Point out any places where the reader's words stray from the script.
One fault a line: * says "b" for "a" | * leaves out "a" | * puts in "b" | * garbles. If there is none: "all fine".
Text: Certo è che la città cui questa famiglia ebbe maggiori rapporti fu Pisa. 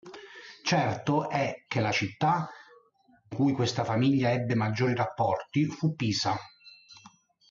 all fine